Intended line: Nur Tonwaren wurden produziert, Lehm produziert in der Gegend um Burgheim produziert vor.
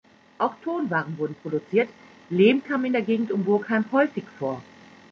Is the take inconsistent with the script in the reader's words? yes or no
yes